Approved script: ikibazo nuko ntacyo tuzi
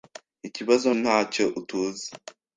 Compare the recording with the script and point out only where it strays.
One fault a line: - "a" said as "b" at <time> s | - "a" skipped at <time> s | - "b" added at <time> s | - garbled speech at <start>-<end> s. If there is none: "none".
- "nuko" skipped at 0.9 s